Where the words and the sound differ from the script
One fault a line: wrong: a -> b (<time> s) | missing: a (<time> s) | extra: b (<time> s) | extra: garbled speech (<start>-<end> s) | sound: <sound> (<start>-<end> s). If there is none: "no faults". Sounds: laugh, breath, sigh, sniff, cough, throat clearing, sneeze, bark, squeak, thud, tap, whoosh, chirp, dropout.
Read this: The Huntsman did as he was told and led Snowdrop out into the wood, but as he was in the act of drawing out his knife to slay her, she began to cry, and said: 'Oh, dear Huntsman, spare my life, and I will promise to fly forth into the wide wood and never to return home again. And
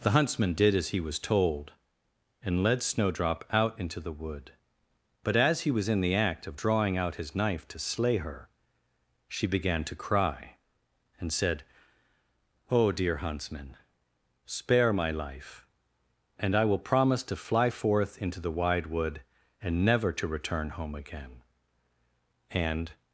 no faults